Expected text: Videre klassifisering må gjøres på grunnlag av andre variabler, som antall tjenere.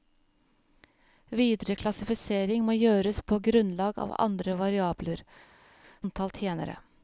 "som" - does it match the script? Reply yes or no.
no